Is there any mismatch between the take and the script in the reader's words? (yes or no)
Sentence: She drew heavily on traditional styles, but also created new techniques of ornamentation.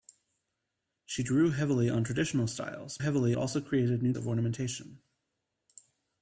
yes